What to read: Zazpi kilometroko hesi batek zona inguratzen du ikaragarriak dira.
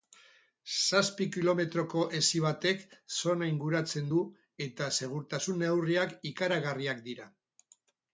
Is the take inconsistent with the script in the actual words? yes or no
yes